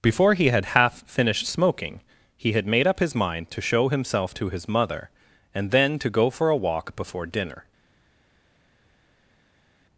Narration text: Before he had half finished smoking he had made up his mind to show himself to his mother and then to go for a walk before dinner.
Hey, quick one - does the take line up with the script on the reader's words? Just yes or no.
yes